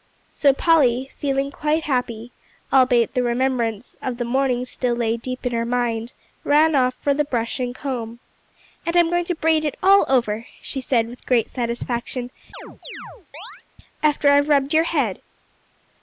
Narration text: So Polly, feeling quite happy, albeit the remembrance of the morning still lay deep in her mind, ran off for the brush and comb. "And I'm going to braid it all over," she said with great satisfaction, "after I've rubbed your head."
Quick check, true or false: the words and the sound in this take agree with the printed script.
false